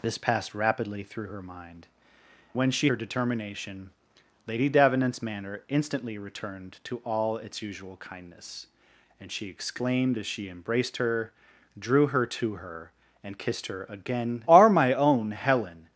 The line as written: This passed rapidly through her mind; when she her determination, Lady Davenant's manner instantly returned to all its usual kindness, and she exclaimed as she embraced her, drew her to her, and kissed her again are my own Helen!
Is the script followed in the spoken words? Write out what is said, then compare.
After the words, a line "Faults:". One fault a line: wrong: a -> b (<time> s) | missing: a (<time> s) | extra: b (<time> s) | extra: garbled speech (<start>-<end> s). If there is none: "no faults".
This passed rapidly through her mind; when she her determination, Lady Davenant's manner instantly returned to all its usual kindness, and she exclaimed as she embraced her, drew her to her, and kissed her again are my own Helen!
Faults:
no faults